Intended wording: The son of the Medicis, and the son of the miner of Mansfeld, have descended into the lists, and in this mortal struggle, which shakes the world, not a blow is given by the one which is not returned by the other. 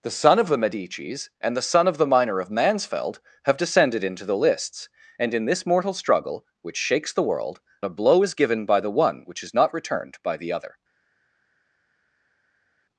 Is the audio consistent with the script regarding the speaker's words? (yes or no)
no